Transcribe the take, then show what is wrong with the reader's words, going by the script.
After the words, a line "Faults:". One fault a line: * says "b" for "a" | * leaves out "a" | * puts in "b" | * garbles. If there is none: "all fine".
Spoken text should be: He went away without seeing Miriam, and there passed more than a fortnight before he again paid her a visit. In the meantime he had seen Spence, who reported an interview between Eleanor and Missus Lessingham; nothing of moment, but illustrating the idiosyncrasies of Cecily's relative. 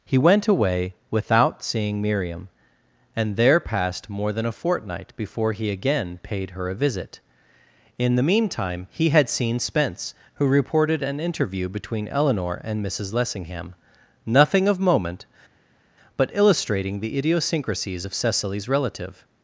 He went away without seeing Miriam, and there passed more than a fortnight before he again paid her a visit. In the meantime he had seen Spence, who reported an interview between Eleanor and Missus Lessingham; nothing of moment, but illustrating the idiosyncrasies of Cecily's relative.
Faults:
all fine